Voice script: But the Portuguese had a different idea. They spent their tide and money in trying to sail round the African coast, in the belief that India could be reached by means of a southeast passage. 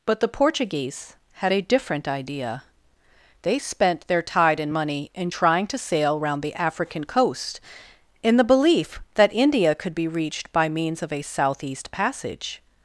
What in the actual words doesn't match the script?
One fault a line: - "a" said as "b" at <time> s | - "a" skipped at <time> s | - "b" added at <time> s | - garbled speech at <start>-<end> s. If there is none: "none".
none